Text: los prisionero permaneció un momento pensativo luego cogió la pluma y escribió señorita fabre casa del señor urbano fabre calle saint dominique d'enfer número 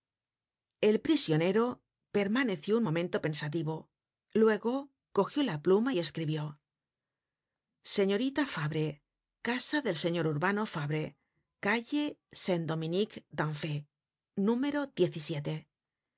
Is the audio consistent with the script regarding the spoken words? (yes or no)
no